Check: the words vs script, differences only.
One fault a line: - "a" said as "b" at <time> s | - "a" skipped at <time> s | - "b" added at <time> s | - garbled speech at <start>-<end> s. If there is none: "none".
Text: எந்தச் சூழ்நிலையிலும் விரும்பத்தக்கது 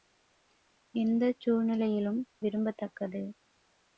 none